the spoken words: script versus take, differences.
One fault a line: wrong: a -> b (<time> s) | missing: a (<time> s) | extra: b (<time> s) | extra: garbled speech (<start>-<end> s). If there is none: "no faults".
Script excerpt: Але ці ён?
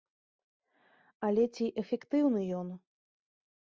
extra: эфектыўны (1.9 s)